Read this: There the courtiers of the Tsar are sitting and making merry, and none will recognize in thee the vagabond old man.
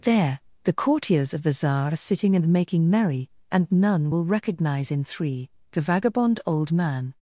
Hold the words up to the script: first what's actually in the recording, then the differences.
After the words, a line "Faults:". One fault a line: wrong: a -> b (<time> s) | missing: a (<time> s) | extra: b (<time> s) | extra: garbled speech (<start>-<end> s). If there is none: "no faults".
There the courtiers of the Tsar are sitting and making merry, and none will recognize in three the vagabond old man.
Faults:
wrong: thee -> three (5.0 s)